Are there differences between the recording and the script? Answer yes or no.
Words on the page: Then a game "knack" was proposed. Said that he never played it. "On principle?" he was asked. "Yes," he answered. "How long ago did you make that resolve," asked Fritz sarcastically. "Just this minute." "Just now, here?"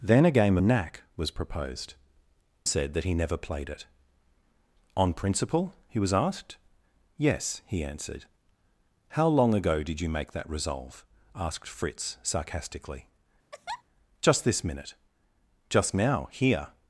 no